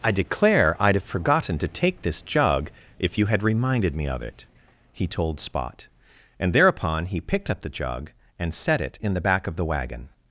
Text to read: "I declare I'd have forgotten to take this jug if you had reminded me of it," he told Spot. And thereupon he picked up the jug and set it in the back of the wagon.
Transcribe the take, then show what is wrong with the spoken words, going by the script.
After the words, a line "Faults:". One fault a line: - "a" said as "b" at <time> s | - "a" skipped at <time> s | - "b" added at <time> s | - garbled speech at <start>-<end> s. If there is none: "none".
"I declare I'd have forgotten to take this jug if you had reminded me of it," he told Spot. And thereupon he picked up the jug and set it in the back of the wagon.
Faults:
none